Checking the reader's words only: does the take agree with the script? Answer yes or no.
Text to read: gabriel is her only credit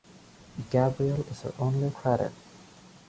yes